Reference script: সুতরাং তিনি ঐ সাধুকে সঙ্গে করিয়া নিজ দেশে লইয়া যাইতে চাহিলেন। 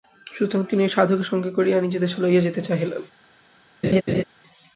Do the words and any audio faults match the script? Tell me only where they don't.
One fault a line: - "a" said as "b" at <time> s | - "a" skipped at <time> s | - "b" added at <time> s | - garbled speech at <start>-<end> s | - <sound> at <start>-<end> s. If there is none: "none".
- laugh at 3.8-4.2 s